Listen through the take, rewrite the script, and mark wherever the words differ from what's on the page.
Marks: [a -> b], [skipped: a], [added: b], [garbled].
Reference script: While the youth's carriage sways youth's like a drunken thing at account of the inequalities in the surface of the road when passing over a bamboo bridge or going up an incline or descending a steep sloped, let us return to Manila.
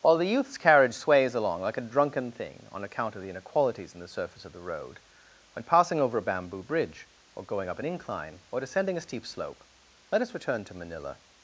While the youth's carriage sways [youth's -> along] like a drunken thing [at -> on] account of the inequalities in the surface of the road when passing over a bamboo bridge or going up an incline or descending a steep [sloped, -> slope] let us return to Manila.